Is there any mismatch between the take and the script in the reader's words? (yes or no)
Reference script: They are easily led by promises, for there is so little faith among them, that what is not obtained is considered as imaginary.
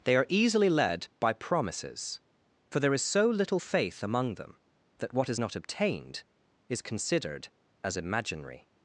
no